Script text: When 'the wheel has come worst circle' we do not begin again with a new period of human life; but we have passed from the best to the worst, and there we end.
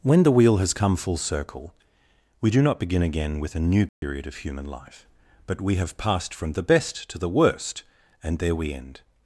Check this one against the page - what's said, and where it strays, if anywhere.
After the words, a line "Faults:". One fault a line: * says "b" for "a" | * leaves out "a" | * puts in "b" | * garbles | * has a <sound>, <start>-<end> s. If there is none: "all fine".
When 'the wheel has come full circle' we do not begin again with a new period of human life; but we have passed from the best to the worst, and there we end.
Faults:
* says "full" for "worst"
* has a dropout, 3.9-4.0 s